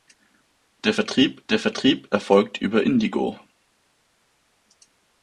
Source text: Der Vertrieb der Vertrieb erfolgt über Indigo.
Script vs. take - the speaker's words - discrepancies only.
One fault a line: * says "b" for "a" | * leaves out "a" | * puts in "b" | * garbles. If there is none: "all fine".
all fine